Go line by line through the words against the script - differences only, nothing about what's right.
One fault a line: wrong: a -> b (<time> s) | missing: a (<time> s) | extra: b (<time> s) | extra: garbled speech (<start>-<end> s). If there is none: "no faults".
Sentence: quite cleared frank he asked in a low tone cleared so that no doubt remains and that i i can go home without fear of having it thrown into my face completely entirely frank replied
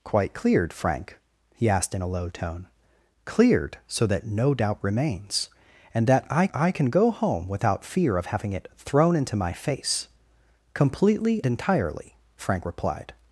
no faults